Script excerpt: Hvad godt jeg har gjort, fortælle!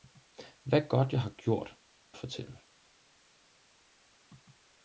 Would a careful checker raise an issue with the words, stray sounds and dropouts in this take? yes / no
no